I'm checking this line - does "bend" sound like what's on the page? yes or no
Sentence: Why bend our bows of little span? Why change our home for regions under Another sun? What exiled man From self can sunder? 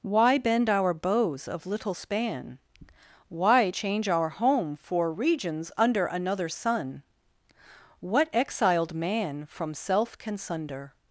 yes